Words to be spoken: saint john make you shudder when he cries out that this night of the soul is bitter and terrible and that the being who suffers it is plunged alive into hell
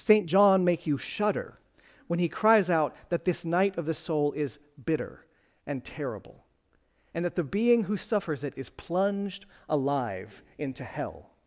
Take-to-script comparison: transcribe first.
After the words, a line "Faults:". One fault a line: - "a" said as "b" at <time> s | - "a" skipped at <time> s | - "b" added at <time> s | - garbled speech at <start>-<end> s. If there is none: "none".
saint john make you shudder when he cries out that this night of the soul is bitter and terrible and that the being who suffers it is plunged alive into hell
Faults:
none